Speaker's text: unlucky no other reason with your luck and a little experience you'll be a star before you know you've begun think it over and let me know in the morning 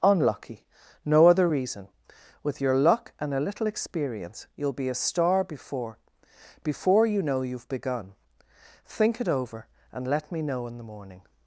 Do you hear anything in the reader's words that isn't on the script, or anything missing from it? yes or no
yes